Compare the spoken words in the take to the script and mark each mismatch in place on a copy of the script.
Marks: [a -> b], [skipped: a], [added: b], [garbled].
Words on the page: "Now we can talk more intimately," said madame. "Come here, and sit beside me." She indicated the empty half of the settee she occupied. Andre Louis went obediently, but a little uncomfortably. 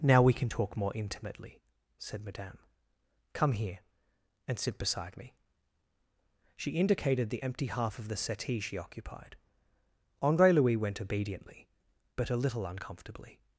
"Now we can talk more intimately," said madame. "Come here, and sit beside me." She indicated the empty half of the settee she occupied. Andre Louis went obediently, but a little uncomfortably.